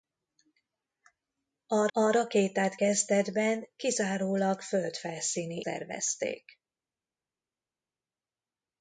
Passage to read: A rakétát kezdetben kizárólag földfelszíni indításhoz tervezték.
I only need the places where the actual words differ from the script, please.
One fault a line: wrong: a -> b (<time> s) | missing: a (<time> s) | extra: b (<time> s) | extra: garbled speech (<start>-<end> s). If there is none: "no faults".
extra: a (1.9 s)
missing: indításhoz (5.6 s)